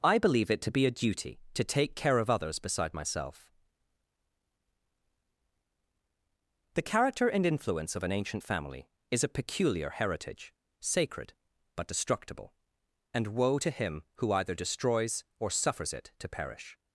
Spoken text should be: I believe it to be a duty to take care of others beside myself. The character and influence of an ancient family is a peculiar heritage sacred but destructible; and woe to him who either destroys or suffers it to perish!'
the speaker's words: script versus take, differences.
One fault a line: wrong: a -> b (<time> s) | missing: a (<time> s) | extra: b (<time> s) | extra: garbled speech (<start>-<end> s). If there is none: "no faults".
no faults